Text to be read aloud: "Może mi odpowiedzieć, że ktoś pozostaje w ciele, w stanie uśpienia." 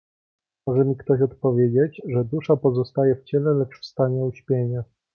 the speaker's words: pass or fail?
fail